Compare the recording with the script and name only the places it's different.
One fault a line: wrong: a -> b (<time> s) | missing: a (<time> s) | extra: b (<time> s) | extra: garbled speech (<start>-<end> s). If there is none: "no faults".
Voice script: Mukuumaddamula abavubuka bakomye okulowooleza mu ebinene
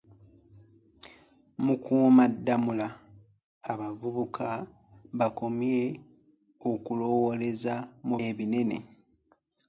no faults